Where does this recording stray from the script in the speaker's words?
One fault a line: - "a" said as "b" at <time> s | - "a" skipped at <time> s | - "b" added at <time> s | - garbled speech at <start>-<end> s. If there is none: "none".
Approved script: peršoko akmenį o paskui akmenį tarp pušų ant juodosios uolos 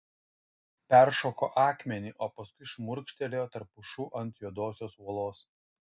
- "akmenį" said as "šmurkštelėjo" at 2.7 s